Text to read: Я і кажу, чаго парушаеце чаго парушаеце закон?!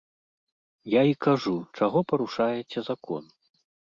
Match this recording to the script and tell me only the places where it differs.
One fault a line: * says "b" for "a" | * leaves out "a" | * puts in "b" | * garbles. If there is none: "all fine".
* leaves out "чаго парушаеце"